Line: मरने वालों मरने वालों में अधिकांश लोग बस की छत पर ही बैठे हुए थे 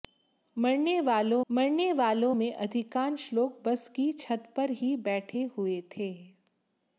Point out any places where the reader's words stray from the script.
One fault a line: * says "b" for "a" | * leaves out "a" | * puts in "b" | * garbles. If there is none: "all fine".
all fine